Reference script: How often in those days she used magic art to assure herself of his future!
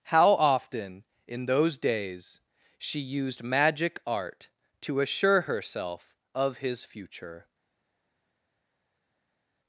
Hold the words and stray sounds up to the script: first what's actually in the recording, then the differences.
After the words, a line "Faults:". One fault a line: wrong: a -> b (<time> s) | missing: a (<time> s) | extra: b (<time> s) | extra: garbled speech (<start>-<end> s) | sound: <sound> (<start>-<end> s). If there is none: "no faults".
How often in those days she used magic art to assure herself of his future!
Faults:
no faults